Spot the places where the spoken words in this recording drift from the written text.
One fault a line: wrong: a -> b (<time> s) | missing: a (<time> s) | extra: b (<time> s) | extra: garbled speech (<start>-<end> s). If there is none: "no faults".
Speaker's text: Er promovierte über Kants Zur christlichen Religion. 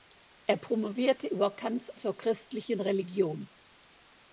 no faults